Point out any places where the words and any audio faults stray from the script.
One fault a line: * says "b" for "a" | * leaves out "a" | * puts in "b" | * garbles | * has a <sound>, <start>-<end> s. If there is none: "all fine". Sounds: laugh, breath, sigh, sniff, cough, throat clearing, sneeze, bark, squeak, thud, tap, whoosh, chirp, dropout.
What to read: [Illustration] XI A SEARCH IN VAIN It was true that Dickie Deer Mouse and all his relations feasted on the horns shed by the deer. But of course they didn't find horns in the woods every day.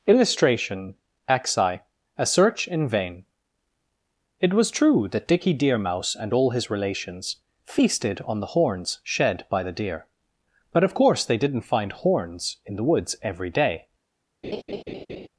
* has a laugh, 14.4-15.3 s